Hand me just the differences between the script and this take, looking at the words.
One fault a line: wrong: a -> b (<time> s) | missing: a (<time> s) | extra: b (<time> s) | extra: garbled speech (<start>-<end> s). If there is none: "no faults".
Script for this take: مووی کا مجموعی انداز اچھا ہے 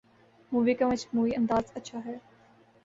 no faults